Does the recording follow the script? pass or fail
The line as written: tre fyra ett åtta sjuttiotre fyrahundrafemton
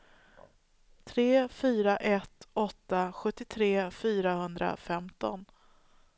pass